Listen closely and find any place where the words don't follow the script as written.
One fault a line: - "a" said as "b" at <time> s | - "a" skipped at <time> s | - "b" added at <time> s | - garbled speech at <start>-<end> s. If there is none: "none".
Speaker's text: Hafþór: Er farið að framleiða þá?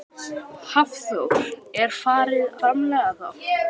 - "að" skipped at 2.6 s